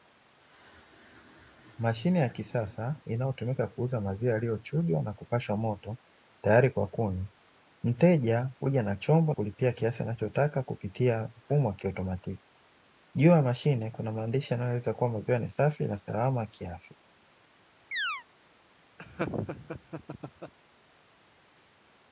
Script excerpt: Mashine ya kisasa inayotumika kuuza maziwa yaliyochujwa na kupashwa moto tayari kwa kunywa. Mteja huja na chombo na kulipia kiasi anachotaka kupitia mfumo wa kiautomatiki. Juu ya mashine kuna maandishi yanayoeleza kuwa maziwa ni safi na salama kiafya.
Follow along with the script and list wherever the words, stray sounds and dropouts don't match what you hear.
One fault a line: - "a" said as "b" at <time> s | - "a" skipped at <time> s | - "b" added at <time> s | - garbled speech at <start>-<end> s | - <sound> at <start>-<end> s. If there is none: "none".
- "na" skipped at 9.3 s
- chirp at 17.9-18.2 s
- laugh at 19.0-20.5 s